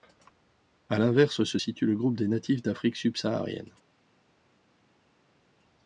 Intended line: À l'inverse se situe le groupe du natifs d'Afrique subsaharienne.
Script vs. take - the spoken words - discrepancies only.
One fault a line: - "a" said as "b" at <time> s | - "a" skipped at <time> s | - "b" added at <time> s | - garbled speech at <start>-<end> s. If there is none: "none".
- "du" said as "des" at 2.1 s